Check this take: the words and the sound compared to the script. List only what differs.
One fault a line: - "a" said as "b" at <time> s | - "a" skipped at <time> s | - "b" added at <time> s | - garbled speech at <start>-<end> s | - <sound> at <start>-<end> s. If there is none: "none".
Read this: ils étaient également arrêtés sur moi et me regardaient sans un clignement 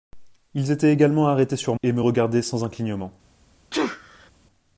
- "moi" skipped at 1.8 s
- sneeze at 3.7-4.3 s